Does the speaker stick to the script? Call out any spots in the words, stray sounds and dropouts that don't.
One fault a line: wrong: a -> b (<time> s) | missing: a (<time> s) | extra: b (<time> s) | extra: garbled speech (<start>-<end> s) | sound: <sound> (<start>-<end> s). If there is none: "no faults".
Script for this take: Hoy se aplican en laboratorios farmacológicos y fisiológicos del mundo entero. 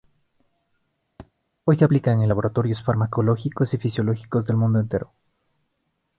sound: thud (1.2-1.3 s)